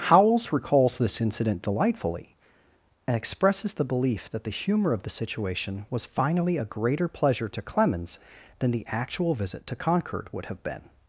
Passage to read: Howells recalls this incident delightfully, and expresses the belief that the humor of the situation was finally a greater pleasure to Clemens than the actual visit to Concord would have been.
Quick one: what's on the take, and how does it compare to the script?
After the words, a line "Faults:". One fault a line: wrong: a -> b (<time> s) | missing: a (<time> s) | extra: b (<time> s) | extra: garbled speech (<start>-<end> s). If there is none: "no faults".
Howells recalls this incident delightfully, and expresses the belief that the humor of the situation was finally a greater pleasure to Clemens than the actual visit to Concord would have been.
Faults:
no faults